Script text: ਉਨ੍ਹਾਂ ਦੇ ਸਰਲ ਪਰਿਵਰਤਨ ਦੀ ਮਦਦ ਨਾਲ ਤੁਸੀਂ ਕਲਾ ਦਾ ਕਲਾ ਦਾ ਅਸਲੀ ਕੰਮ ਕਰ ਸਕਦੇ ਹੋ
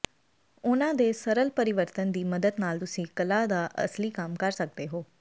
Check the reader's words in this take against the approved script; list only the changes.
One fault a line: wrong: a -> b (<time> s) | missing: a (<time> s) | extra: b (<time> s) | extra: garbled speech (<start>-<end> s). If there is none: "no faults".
missing: ਕਲਾ ਦਾ (3.7 s)